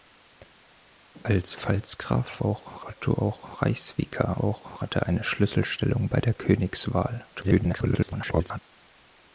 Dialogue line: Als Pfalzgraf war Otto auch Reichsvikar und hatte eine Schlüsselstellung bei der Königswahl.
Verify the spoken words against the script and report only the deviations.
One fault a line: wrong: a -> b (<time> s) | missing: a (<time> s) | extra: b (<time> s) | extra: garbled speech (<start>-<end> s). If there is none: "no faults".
wrong: war -> auch (2.4 s)
wrong: und -> auch (4.4 s)
extra: garbled speech (7.3-8.6 s)